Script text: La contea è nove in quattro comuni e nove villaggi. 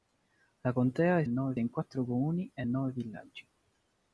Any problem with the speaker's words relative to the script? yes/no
no